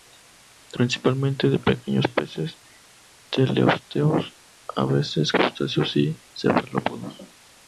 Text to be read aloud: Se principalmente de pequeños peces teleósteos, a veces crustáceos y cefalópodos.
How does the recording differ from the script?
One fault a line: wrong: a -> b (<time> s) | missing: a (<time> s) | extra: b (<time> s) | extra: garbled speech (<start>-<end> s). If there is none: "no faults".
no faults